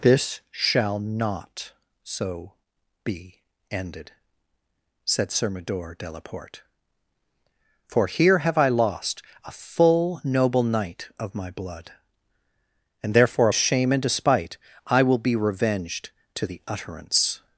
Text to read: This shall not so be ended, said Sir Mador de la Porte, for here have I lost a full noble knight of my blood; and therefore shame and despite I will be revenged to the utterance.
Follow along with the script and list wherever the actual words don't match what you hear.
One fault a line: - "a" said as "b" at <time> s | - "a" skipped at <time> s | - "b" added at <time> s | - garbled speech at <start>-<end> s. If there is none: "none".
none